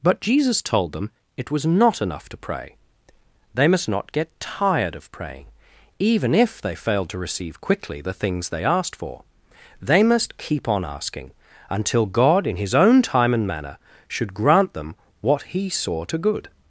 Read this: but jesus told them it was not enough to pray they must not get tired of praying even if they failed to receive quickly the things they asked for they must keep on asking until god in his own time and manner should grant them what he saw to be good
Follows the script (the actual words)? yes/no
no